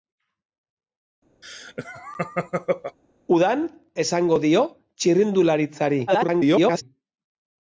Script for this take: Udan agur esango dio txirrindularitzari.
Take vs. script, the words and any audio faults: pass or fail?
fail